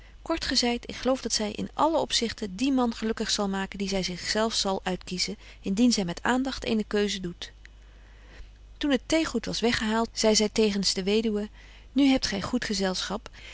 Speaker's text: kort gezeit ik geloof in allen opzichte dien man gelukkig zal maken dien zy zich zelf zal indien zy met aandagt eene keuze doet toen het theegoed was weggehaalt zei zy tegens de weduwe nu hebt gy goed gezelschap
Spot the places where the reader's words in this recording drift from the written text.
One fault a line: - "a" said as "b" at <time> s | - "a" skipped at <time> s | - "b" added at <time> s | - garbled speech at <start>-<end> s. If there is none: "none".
- "dat zy" added at 1.2 s
- "uitkiezen" added at 4.8 s